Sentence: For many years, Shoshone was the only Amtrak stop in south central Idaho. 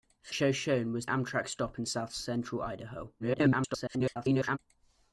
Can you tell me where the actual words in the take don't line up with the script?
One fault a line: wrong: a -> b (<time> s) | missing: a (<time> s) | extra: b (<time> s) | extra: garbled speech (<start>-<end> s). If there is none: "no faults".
missing: many years (0.3 s)
missing: the only (1.1 s)
extra: garbled speech (3.2-4.6 s)